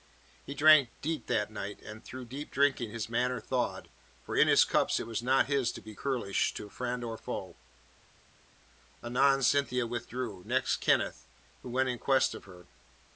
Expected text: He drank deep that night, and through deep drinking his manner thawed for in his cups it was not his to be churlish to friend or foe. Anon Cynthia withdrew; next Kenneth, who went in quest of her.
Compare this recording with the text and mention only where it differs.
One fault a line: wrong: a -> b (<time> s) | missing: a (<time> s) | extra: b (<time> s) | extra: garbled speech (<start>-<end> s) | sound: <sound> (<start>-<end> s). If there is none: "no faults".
no faults